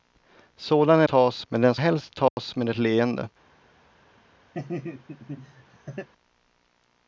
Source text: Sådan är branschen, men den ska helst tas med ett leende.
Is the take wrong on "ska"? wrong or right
wrong